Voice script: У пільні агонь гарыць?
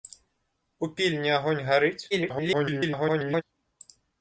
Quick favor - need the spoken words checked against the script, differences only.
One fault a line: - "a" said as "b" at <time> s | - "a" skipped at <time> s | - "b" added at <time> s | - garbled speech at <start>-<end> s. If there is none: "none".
- garbled speech at 2.1-3.4 s